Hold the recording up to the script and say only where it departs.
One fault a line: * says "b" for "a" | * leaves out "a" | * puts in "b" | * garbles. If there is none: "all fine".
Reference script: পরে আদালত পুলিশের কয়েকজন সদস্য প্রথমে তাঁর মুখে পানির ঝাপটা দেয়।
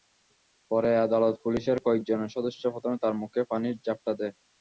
all fine